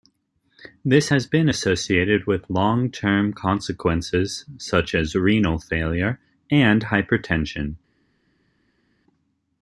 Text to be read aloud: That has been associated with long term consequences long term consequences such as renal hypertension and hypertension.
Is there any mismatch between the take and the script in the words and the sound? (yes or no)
yes